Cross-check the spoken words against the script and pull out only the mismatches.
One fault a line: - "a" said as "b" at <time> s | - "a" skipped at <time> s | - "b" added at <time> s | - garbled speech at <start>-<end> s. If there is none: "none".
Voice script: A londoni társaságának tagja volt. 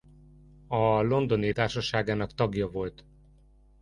none